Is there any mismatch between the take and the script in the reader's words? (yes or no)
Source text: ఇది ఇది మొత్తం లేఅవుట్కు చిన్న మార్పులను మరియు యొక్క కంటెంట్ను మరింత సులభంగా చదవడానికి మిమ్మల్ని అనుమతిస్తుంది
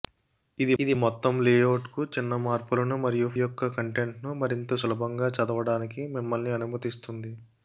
no